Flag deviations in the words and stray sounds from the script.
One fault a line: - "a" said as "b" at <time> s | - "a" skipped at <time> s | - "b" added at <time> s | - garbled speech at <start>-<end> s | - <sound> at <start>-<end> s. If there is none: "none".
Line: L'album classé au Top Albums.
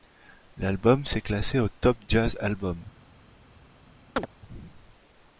- "s'est" added at 1.1 s
- "Jazz" added at 2.1 s
- chirp at 4.2-4.3 s